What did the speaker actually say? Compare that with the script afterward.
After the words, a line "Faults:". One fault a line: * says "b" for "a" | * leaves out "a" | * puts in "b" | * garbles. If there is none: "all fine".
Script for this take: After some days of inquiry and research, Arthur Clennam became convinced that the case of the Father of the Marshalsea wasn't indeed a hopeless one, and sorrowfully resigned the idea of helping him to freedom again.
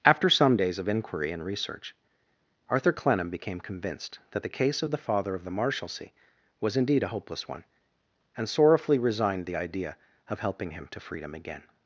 After some days of inquiry and research, Arthur Clennam became convinced that the case of the Father of the Marshalsea was indeed a hopeless one, and sorrowfully resigned the idea of helping him to freedom again.
Faults:
* says "was" for "wasn't"